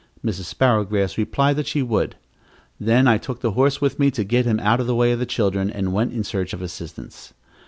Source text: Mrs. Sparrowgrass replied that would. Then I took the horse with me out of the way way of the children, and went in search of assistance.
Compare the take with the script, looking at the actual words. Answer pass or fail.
fail